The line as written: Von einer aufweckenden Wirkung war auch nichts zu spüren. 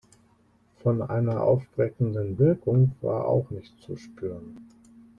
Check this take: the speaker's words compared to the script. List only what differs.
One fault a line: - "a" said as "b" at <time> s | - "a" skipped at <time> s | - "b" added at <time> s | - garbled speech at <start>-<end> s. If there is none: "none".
none